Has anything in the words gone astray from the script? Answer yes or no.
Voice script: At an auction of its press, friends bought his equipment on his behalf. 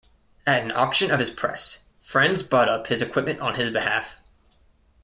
yes